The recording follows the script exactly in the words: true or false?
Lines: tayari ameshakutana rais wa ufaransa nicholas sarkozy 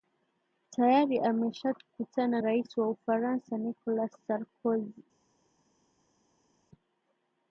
true